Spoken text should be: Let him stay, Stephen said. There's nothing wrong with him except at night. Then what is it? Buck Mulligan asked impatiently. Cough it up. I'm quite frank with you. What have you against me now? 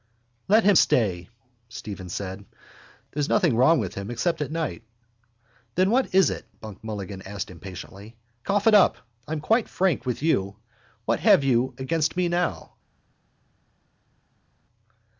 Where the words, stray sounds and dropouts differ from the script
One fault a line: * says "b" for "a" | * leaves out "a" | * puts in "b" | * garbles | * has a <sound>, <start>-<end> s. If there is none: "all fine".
all fine